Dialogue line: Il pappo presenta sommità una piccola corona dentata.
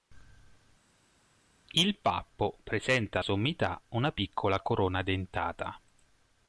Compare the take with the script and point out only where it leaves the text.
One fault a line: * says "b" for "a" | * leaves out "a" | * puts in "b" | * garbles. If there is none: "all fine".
all fine